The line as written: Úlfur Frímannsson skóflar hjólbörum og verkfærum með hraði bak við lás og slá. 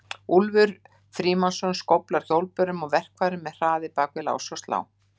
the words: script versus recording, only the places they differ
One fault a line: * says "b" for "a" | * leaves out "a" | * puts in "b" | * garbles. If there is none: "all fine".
all fine